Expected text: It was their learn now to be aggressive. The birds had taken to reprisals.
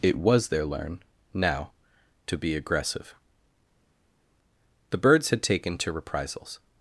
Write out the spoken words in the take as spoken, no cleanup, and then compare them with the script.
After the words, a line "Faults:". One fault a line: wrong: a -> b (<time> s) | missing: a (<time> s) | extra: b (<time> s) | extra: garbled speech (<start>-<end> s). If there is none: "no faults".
It was their learn now to be aggressive. The birds had taken to reprisals.
Faults:
no faults